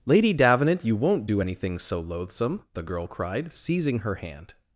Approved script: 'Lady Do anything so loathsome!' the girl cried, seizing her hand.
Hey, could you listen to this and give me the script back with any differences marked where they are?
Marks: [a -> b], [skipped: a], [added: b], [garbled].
'Lady [added: Davenant you won't] Do anything so loathsome!' the girl cried, seizing her hand.